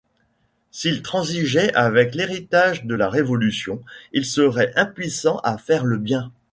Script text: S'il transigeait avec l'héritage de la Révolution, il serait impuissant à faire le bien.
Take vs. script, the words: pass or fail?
pass